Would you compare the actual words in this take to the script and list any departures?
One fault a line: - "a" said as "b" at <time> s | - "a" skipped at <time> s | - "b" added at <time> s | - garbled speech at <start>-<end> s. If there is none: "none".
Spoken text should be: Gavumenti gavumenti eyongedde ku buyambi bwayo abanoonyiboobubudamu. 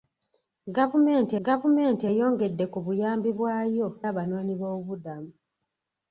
none